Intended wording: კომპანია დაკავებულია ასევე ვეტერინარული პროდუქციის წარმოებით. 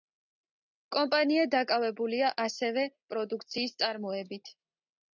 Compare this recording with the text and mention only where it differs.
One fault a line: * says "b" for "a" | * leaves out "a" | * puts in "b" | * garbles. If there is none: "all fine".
* leaves out "ვეტერინარული"